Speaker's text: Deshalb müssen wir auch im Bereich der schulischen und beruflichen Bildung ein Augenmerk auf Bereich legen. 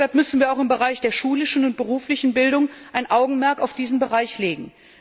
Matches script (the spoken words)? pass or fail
fail